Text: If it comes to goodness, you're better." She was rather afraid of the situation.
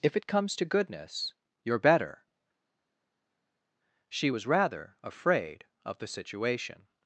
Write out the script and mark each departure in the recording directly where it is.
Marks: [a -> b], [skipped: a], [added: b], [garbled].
If it comes to goodness, you're better." She was rather afraid of the situation.